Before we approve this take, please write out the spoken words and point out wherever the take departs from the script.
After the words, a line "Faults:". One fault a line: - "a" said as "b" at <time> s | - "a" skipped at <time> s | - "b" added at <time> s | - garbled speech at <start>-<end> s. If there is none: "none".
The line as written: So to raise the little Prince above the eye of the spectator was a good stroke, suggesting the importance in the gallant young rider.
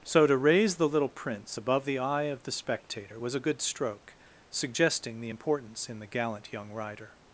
So to raise the little Prince above the eye of the spectator was a good stroke, suggesting the importance in the gallant young rider.
Faults:
none